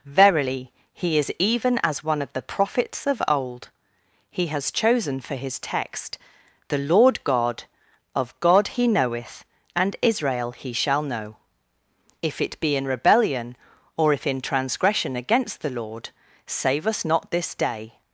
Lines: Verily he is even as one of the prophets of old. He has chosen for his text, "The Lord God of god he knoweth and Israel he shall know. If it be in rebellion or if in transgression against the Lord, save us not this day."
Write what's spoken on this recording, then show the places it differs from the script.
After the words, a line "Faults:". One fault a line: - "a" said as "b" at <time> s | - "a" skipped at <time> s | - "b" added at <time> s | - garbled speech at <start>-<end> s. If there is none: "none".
Verily he is even as one of the prophets of old. He has chosen for his text, "The Lord God of god he knoweth and Israel he shall know. If it be in rebellion or if in transgression against the Lord, save us not this day."
Faults:
none